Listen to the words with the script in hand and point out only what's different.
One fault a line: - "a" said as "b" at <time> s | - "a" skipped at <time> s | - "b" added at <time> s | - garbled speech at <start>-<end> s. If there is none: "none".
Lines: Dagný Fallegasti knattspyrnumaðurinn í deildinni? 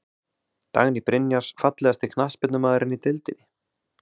- "Brynjars" added at 1.1 s